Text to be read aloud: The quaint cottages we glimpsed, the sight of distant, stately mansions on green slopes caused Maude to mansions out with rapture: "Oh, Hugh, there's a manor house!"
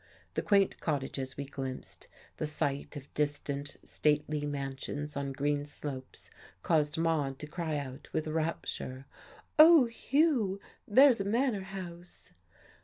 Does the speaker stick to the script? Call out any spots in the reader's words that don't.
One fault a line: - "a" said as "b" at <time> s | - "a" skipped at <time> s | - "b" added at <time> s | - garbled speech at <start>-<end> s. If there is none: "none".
- "mansions" said as "cry" at 7.5 s